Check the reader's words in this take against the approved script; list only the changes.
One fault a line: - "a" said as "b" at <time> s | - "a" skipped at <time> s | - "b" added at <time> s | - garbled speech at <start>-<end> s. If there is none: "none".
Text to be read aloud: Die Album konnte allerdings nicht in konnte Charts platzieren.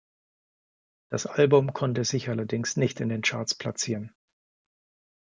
- "Die" said as "Das" at 1.1 s
- "sich" added at 2.0 s
- "konnte" said as "den" at 3.1 s